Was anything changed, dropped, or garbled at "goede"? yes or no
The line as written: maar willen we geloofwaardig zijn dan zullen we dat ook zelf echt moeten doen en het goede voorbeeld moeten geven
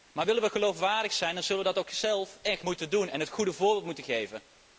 no